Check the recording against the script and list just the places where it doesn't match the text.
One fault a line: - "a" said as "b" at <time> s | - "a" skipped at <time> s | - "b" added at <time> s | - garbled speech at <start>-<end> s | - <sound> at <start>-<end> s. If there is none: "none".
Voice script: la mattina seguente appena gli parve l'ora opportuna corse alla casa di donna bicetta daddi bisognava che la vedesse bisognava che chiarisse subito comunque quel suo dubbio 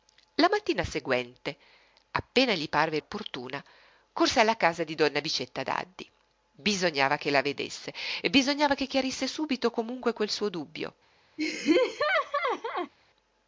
- "l'ora" skipped at 3.0 s
- laugh at 11.4-12.9 s